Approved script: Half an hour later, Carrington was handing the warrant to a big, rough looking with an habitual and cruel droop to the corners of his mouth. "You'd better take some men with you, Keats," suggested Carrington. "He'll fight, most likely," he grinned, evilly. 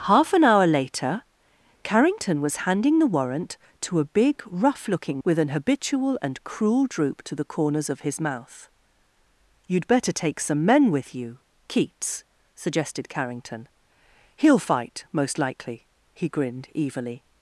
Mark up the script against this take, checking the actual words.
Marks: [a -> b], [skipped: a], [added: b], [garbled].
Half an hour later, Carrington was handing the warrant to a big, rough looking with an habitual and cruel droop to the corners of his mouth. "You'd better take some men with you, Keats," suggested Carrington. "He'll fight, most likely," he grinned, evilly.